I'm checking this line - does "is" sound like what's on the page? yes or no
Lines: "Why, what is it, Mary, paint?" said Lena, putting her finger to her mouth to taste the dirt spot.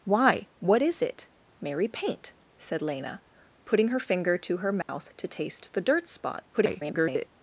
yes